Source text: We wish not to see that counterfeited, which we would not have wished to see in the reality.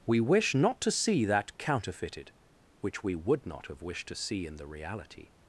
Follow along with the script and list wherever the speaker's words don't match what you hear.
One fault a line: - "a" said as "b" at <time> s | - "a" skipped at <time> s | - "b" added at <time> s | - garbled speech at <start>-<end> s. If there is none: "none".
none